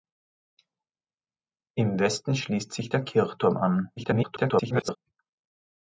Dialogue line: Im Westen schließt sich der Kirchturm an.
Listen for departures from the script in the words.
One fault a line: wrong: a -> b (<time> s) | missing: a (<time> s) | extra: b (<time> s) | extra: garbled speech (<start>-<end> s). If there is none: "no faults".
extra: garbled speech (4.0-5.0 s)